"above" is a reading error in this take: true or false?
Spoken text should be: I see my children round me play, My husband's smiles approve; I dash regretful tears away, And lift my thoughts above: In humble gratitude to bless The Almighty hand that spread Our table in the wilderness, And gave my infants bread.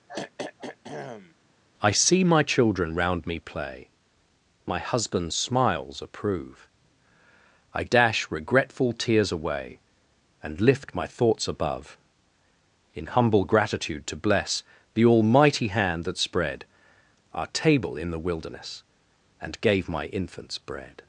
false